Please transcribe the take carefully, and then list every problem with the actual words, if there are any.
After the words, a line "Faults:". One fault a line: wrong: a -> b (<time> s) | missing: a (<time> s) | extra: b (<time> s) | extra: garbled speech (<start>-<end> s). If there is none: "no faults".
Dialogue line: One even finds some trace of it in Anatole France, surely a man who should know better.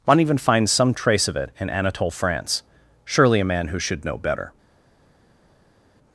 One even finds some trace of it in Anatole France, surely a man who should know better.
Faults:
no faults